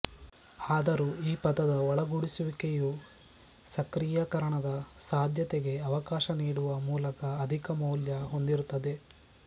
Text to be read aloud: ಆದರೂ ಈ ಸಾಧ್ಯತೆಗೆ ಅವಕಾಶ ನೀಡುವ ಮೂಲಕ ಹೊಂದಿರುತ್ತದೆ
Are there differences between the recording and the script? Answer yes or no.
yes